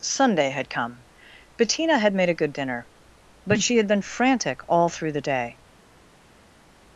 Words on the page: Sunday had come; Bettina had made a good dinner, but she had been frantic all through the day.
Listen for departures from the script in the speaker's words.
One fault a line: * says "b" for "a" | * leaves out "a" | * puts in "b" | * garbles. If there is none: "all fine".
all fine